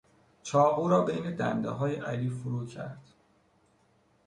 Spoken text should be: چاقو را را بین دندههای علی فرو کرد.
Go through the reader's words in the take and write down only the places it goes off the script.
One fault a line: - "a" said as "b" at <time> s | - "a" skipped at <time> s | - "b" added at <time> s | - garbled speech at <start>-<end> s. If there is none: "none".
- "را" skipped at 1.1 s